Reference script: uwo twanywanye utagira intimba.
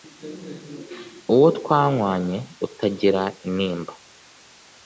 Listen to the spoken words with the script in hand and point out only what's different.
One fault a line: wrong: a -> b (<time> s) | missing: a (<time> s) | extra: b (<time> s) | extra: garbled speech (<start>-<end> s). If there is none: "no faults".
no faults